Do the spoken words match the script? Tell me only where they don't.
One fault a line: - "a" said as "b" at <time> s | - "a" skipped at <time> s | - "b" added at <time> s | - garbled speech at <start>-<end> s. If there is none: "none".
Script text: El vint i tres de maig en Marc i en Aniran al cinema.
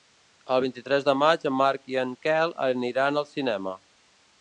- "Quel" added at 2.3 s